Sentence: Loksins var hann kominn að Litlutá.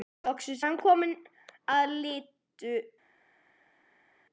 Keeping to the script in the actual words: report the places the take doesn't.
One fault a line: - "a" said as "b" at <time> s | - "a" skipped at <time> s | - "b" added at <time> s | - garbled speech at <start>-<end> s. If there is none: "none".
- "var" skipped at 0.6 s